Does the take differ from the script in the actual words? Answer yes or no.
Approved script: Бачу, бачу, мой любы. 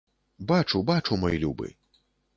no